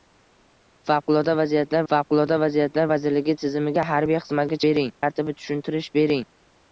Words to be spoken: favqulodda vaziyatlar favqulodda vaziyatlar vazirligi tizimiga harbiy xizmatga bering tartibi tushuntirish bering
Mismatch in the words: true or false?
false